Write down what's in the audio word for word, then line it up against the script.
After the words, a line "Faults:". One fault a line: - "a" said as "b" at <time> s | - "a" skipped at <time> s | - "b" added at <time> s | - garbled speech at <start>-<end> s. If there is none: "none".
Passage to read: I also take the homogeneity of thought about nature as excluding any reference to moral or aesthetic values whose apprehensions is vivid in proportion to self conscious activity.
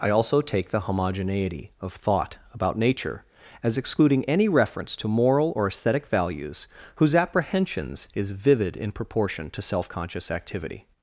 I also take the homogeneity of thought about nature as excluding any reference to moral or aesthetic values whose apprehensions is vivid in proportion to self conscious activity.
Faults:
none